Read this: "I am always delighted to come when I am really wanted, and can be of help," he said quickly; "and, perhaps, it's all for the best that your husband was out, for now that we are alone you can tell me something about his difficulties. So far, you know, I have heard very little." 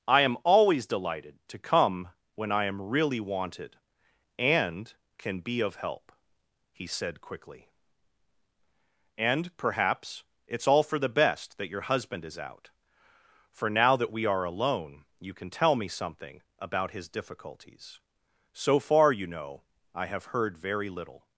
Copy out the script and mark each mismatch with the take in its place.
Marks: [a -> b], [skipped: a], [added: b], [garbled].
"I am always delighted to come when I am really wanted, and can be of help," he said quickly; "and, perhaps, it's all for the best that your husband [was -> is] out, for now that we are alone you can tell me something about his difficulties. So far, you know, I have heard very little."